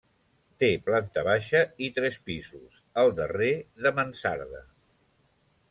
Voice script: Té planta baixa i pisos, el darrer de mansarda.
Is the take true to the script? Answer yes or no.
no